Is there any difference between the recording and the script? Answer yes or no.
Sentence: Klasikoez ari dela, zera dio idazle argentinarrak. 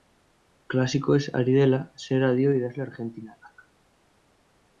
no